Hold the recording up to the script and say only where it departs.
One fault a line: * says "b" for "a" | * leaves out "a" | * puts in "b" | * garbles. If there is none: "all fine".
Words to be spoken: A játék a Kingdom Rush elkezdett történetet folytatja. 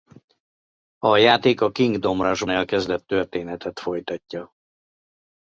all fine